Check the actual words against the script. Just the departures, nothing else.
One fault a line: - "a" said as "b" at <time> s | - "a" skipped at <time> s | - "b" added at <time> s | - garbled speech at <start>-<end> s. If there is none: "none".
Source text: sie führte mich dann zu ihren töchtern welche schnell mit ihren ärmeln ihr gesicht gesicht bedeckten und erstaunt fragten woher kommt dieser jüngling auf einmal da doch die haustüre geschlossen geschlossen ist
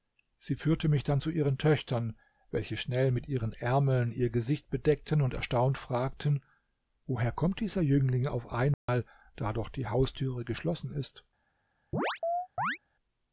- "gesicht" skipped at 4.7 s
- "geschlossen" skipped at 10.9 s